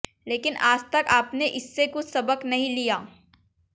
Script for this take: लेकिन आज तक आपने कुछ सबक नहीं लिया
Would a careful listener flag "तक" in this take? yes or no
no